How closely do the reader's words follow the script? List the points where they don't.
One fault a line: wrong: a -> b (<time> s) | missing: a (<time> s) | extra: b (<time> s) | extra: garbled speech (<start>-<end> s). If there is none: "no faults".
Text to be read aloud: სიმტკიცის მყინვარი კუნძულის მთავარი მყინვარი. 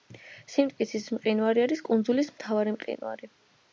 extra: არის (1.7 s)